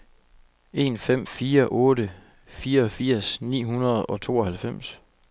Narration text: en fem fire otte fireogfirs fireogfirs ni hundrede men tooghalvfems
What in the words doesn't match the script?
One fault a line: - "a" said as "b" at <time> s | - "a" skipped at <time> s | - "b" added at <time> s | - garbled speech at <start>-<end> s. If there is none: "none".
- "fireogfirs" skipped at 3.4 s
- "men" said as "og" at 4.0 s